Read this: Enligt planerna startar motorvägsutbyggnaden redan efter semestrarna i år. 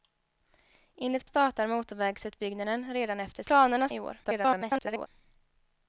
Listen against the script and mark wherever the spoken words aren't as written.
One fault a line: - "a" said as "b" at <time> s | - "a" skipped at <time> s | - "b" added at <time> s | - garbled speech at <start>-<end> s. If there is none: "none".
- "planerna" skipped at 1.2 s
- "semestrarna" said as "planerna" at 3.4 s
- garbled speech at 4.2-5.1 s